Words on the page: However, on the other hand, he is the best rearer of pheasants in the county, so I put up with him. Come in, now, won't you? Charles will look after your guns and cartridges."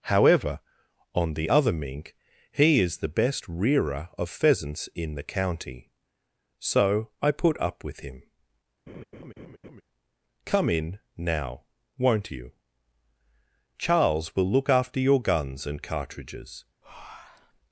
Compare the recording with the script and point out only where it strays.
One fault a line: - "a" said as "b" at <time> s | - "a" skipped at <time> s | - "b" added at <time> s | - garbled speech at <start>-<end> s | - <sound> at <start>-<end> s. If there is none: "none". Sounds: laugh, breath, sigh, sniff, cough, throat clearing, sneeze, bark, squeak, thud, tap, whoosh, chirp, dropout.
- "hand" said as "mink" at 1.7 s
- laugh at 8.9-9.8 s
- breath at 16.8-17.6 s